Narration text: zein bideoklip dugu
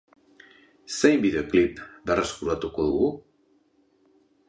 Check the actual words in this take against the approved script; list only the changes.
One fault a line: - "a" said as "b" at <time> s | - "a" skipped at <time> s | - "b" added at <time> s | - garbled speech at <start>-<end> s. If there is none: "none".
- "berreskuratuko" added at 2.1 s